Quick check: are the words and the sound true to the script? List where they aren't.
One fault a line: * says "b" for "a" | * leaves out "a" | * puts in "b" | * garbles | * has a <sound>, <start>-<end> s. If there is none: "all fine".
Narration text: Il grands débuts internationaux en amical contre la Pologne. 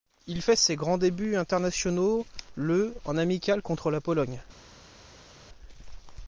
* puts in "fait ses"
* puts in "le"